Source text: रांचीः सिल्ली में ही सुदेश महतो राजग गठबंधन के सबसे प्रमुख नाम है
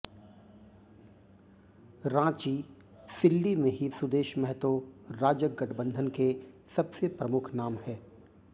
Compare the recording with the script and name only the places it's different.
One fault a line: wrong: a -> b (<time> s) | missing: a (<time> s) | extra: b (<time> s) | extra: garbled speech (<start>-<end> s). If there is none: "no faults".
no faults